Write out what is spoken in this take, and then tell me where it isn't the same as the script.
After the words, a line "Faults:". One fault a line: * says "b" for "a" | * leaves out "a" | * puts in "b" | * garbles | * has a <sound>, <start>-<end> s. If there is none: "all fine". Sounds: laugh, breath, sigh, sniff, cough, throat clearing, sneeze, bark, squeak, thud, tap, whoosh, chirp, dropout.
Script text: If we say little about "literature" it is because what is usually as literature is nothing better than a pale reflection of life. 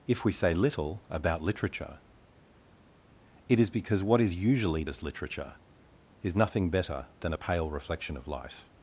If we say little about "literature" it is because what is usually as literature is nothing better than a pale reflection of life.
Faults:
all fine